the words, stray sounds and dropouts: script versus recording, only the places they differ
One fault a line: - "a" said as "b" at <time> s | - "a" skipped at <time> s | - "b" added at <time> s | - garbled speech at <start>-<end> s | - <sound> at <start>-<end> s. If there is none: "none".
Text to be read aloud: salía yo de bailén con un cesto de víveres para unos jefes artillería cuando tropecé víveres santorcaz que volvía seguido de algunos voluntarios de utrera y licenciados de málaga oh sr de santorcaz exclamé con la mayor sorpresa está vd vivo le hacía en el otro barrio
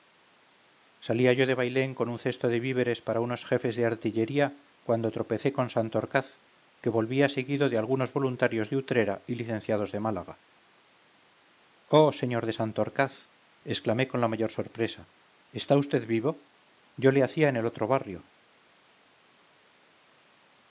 - "de" added at 3.8 s
- "víveres" said as "con" at 5.6 s
- "yo" added at 17.0 s